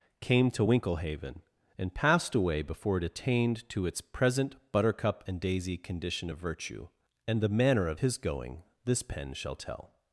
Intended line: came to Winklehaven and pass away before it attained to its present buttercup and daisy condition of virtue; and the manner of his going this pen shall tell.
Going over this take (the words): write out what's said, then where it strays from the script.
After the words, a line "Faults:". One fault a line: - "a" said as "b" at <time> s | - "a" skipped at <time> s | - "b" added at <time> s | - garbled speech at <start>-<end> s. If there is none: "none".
came to Winklehaven and passed away before it attained to its present buttercup and daisy condition of virtue; and the manner of his going this pen shall tell.
Faults:
- "pass" said as "passed" at 1.9 s